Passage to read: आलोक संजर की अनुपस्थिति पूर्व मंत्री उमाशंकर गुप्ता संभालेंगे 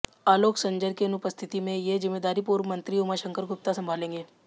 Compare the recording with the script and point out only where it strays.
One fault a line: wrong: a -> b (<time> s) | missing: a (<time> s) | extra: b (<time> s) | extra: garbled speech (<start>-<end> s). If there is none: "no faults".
extra: में ये जिम्मेदारी (1.6 s)